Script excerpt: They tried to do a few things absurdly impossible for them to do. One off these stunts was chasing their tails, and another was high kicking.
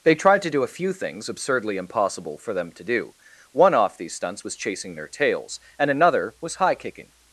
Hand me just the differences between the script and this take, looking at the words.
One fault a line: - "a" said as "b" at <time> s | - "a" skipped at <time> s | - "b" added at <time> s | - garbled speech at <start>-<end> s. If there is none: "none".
none